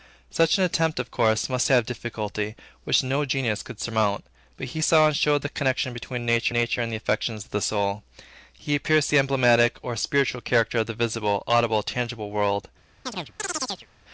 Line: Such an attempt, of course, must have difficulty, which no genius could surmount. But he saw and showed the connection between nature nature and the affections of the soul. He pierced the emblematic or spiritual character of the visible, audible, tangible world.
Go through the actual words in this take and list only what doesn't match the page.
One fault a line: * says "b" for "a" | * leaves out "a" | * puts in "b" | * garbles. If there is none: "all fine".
all fine